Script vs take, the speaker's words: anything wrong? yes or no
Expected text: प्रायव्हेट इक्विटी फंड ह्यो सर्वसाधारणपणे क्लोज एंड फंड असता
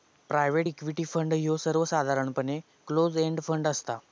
no